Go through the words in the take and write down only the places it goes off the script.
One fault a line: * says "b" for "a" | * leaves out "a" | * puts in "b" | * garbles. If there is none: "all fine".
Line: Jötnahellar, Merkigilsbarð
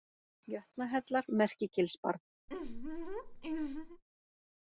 all fine